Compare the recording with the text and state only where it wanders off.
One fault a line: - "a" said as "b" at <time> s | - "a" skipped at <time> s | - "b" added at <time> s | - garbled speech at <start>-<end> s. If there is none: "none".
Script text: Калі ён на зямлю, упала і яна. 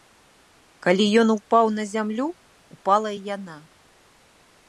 - "упаў" added at 1.3 s